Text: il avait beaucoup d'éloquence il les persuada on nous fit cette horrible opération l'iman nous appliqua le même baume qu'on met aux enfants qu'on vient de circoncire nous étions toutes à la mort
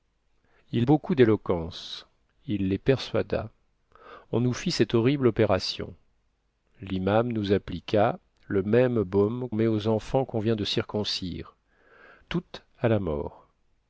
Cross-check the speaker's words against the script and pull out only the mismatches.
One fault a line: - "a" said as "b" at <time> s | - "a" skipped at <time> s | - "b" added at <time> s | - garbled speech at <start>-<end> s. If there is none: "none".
- "avait" skipped at 0.9 s
- "qu'on" skipped at 9.5 s
- "nous étions" skipped at 11.5 s